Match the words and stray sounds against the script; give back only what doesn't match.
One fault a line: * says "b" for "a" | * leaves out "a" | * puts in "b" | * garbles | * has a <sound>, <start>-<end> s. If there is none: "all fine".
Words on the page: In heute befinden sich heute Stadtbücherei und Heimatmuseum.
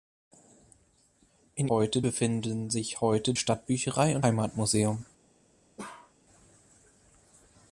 * has a bark, 5.8-6.1 s